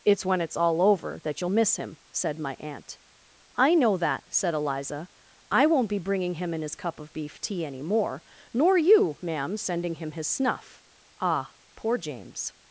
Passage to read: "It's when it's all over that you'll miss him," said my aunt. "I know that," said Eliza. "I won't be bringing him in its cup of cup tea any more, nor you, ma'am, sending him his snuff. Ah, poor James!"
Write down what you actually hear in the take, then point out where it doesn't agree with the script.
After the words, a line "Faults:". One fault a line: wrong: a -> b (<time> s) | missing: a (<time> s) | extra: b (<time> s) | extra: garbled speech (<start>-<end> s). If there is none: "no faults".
"It's when it's all over that you'll miss him," said my aunt. "I know that," said Eliza. "I won't be bringing him in his cup of beef tea any more, nor you, ma'am, sending him his snuff. Ah, poor James!"
Faults:
wrong: its -> his (6.6 s)
wrong: cup -> beef (7.1 s)